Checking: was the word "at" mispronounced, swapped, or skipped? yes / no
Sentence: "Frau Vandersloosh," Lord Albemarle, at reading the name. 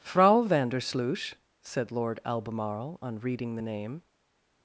yes